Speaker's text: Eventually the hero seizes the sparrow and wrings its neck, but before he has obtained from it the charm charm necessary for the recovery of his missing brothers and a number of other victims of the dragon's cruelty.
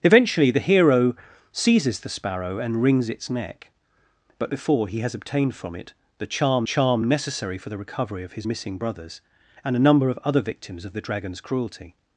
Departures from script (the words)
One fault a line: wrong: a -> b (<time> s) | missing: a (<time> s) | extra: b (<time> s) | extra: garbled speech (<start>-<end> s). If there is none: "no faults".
no faults